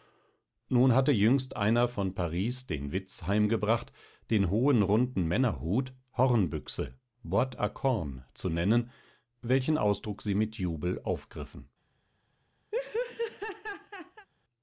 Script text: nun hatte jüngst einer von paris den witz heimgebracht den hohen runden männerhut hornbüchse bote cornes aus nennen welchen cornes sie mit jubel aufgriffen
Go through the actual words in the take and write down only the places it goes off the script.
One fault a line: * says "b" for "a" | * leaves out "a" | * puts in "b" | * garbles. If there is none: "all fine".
* says "zu" for "aus"
* says "ausdruck" for "cornes"